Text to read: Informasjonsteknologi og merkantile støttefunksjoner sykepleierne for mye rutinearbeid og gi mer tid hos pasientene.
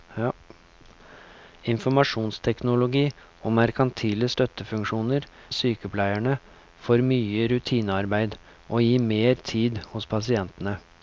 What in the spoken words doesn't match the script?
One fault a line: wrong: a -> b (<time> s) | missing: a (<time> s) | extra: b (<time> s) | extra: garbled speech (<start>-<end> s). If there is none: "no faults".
no faults